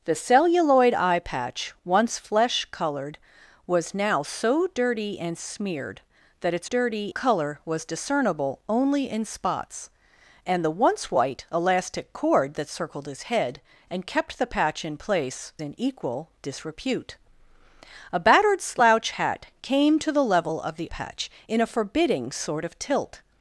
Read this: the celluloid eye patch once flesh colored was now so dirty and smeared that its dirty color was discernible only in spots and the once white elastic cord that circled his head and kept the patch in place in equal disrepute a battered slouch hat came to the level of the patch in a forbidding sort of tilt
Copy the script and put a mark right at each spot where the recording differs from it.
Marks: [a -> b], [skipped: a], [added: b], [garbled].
the celluloid eye patch once flesh colored was now so dirty and smeared that its dirty color was discernible only in spots and the once white elastic cord that circled his head and kept the patch in place in equal disrepute a battered slouch hat came to the level of the patch in a forbidding sort of tilt